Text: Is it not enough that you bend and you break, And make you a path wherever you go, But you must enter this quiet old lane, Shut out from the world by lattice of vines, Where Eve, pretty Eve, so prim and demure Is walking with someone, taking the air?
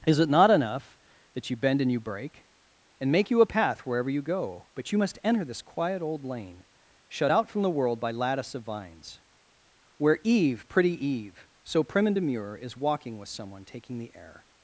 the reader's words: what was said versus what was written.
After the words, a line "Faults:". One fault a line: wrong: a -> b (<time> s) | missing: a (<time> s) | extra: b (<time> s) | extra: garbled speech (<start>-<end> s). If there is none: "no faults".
Is it not enough that you bend and you break, And make you a path wherever you go, But you must enter this quiet old lane, Shut out from the world by lattice of vines, Where Eve, pretty Eve, so prim and demure Is walking with someone, taking the air?
Faults:
no faults